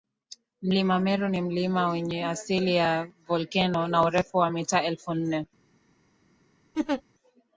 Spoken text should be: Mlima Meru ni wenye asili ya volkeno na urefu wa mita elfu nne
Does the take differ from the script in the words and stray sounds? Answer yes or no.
yes